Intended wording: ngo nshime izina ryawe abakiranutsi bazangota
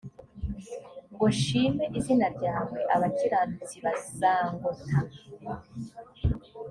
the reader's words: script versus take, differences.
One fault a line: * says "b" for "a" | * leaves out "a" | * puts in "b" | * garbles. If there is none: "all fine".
all fine